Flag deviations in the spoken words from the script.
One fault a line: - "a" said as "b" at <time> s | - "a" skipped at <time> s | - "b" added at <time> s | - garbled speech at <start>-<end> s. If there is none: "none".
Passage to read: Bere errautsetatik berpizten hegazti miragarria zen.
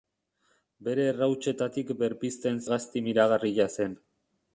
none